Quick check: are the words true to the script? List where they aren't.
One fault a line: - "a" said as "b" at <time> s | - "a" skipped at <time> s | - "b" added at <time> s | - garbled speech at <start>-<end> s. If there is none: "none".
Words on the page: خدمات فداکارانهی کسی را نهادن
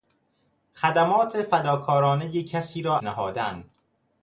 none